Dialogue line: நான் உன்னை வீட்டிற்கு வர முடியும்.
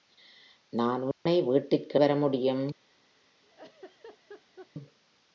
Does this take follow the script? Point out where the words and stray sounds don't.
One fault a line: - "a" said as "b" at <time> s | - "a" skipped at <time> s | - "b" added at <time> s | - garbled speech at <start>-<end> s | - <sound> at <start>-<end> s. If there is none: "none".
- dropout at 1.1-1.3 s
- laugh at 3.4-4.7 s